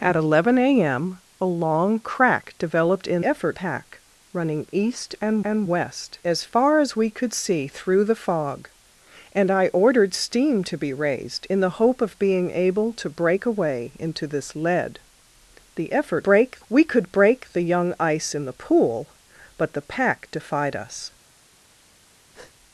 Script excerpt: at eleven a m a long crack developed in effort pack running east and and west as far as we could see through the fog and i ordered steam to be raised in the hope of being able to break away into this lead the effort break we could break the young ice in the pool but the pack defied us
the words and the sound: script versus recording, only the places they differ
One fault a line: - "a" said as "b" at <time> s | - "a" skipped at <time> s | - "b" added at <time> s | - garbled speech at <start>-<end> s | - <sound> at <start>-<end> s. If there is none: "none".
- breath at 22.3-22.5 s